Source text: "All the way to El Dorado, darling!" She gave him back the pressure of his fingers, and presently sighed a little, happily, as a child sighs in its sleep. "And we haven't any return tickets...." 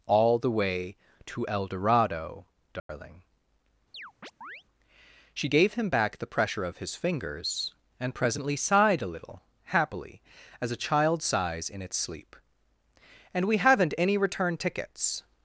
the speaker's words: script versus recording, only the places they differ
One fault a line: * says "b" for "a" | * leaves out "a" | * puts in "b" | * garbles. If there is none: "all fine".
all fine